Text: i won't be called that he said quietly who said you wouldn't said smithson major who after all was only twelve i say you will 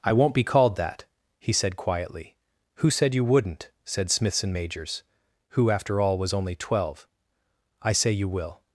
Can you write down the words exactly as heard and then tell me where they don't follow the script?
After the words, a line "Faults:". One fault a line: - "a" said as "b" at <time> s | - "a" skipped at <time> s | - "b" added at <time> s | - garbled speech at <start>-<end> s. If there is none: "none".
i won't be called that he said quietly who said you wouldn't said smithson majors who after all was only twelve i say you will
Faults:
- "major" said as "majors" at 4.5 s